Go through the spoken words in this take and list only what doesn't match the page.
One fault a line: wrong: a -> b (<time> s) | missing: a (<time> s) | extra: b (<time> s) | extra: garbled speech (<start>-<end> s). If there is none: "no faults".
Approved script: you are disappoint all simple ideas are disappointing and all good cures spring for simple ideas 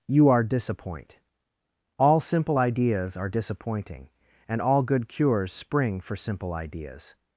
no faults